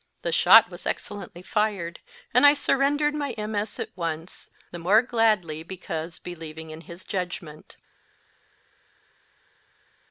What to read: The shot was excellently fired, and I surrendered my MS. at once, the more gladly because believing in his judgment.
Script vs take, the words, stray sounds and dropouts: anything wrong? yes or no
no